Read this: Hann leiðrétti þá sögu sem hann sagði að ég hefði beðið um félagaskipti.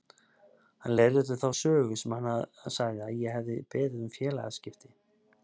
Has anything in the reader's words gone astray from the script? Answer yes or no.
no